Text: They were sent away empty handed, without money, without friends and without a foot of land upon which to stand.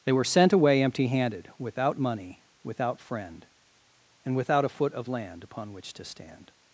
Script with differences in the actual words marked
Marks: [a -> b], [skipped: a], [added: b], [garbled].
They were sent away empty handed, without money, without [friends -> friend] and without a foot of land upon which to stand.